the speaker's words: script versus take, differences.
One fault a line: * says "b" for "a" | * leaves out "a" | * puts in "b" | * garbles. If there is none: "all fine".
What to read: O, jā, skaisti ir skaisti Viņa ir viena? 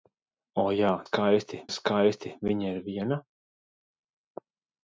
all fine